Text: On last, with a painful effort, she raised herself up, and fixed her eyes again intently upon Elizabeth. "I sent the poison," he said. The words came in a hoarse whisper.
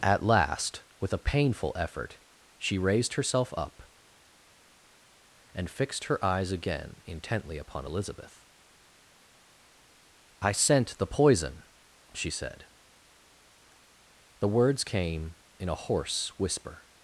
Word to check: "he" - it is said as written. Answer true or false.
false